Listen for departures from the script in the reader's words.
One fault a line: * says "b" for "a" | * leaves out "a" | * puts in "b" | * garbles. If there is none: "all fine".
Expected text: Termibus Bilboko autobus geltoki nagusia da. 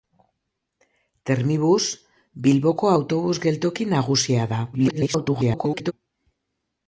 * garbles